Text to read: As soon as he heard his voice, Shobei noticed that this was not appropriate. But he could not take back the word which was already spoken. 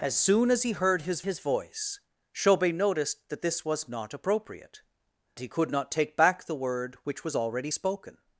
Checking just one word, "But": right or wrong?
wrong